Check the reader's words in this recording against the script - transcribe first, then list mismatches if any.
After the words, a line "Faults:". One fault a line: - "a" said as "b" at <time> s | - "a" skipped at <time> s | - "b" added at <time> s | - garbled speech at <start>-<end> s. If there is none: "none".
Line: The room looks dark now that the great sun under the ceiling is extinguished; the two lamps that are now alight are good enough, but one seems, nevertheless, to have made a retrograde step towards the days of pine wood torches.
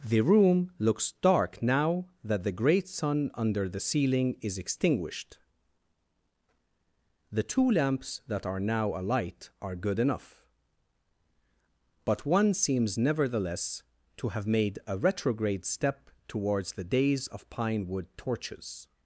The room looks dark now that the great sun under the ceiling is extinguished; the two lamps that are now alight are good enough, but one seems, nevertheless, to have made a retrograde step towards the days of pine wood torches.
Faults:
none